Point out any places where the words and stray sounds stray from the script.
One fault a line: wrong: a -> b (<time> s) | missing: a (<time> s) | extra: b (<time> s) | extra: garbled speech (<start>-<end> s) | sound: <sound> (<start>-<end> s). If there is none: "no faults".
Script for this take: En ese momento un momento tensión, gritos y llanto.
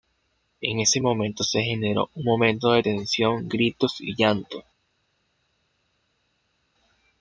extra: se generó (1.4 s)
extra: de (2.7 s)